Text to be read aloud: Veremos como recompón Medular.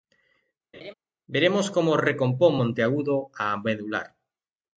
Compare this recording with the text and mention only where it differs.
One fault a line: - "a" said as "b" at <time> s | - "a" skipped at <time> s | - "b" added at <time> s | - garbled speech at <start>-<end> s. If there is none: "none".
- "Monteagudo a" added at 2.5 s